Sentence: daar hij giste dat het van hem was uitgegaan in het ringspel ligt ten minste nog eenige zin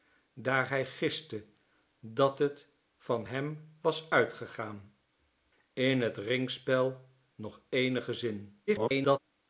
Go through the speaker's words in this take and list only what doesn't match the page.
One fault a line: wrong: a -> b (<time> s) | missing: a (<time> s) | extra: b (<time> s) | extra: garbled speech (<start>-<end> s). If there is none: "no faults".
missing: ligt ten minste (7.1 s)
extra: garbled speech (8.7-9.2 s)